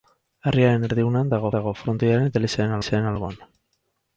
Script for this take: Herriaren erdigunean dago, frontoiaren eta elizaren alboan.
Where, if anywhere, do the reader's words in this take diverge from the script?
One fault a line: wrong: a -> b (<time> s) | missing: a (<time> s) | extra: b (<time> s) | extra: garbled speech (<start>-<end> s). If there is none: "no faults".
extra: dago (1.6 s)
extra: elizaren (2.8 s)